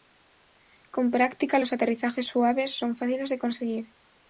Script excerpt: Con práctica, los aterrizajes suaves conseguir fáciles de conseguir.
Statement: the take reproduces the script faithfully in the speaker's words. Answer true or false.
false